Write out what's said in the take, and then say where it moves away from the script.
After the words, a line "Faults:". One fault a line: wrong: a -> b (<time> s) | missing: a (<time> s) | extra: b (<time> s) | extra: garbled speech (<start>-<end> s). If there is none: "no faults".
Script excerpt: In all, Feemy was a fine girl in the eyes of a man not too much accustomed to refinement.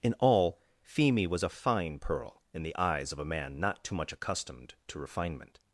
In all, Feemy was a fine pearl in the eyes of a man not too much accustomed to refinement.
Faults:
wrong: girl -> pearl (2.0 s)